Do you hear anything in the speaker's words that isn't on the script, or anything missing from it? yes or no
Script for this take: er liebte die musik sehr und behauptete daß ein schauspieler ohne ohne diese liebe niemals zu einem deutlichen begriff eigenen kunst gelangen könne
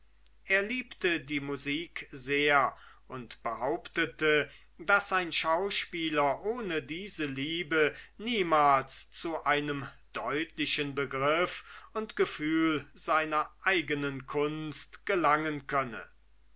yes